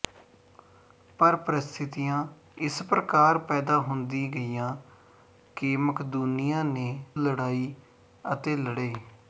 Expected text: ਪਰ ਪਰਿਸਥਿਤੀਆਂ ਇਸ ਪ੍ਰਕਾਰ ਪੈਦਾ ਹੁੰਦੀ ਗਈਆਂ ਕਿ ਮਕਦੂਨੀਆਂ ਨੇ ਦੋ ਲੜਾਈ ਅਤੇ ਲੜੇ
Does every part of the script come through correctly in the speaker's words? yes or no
no